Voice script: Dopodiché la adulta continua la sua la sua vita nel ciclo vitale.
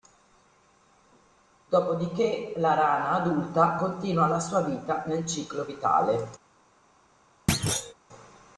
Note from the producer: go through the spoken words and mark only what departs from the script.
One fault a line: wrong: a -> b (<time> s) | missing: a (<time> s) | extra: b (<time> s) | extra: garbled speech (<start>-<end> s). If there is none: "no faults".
extra: rana (2.7 s)
missing: la sua (4.6 s)